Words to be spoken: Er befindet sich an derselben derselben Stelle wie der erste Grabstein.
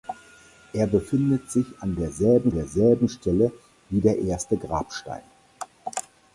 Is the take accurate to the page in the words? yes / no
yes